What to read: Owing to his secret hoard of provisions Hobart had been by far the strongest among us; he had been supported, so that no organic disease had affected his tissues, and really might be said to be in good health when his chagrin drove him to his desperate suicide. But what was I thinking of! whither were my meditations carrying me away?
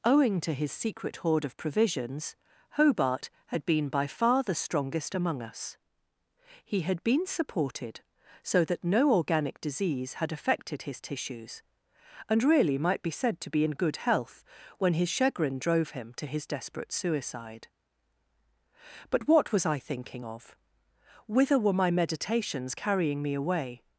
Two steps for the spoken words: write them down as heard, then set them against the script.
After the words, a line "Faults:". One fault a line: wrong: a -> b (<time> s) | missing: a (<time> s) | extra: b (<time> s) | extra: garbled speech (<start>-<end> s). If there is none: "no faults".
Owing to his secret hoard of provisions Hobart had been by far the strongest among us; he had been supported, so that no organic disease had affected his tissues, and really might be said to be in good health when his chagrin drove him to his desperate suicide. But what was I thinking of! whither were my meditations carrying me away?
Faults:
no faults